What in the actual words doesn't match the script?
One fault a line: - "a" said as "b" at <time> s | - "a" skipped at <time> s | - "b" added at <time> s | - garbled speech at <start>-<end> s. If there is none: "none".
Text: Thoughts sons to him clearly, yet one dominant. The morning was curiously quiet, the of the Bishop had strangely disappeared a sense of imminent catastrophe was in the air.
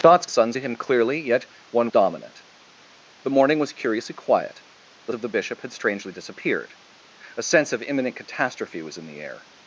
none